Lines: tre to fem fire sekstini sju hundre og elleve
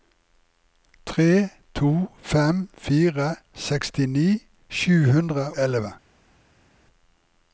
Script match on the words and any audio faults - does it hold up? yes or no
no